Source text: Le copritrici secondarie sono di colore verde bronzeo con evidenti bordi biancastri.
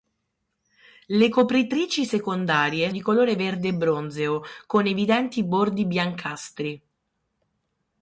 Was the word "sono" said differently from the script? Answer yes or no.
yes